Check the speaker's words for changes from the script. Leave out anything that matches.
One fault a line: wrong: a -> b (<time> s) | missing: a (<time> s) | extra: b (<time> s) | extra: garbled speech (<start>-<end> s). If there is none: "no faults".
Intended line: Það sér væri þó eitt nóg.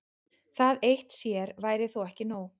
extra: eitt (0.9 s)
wrong: eitt -> ekki (2.1 s)